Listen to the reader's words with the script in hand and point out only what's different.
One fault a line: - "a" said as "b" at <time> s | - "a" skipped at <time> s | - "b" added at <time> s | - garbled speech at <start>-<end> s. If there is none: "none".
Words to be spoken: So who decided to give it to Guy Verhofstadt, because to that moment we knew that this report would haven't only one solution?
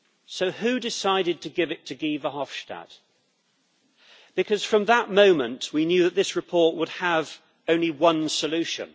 - "to" said as "from" at 4.6 s
- "haven't" said as "have" at 7.0 s